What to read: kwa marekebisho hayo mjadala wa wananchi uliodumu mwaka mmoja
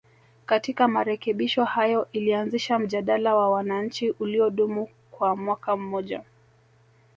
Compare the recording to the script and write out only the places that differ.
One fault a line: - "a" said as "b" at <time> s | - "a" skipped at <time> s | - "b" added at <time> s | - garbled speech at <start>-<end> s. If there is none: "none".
- "kwa" said as "katika" at 0.5 s
- "ilianzisha" added at 2.1 s
- "kwa" added at 5.1 s